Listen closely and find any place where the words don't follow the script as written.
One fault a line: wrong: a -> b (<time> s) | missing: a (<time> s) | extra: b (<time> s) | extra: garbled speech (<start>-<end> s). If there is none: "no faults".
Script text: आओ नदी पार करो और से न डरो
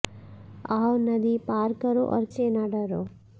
no faults